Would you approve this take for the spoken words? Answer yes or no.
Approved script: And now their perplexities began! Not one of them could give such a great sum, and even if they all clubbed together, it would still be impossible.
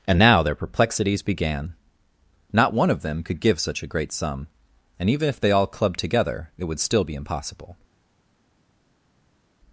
yes